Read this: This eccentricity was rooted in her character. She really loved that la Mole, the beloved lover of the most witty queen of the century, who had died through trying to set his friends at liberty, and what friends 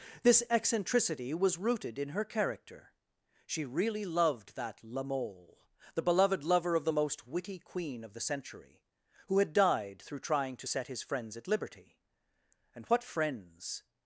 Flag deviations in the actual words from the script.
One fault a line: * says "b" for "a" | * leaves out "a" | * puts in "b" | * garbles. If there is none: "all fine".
all fine